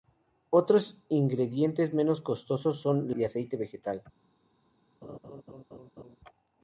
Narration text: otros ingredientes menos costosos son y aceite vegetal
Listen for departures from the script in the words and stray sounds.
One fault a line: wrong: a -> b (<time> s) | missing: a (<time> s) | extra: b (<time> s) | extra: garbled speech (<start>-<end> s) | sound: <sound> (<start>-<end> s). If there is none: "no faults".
sound: laugh (5.0-6.2 s)